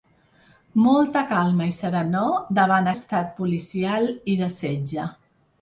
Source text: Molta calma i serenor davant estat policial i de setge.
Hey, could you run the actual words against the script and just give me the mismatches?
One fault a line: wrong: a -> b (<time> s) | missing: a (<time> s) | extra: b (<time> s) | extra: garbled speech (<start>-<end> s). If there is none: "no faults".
no faults